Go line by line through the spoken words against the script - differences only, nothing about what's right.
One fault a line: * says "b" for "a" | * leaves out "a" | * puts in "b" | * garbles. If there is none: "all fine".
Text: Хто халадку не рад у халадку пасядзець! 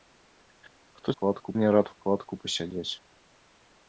all fine